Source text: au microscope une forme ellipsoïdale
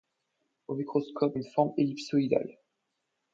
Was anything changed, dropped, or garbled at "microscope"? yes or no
no